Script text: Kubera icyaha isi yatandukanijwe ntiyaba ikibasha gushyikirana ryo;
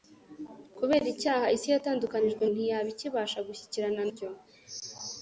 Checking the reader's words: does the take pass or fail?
pass